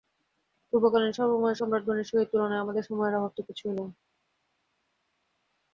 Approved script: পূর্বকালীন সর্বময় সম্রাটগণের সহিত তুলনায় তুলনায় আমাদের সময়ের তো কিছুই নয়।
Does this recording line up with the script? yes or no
no